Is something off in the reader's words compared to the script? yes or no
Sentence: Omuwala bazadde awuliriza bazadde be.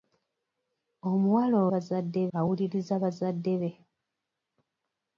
no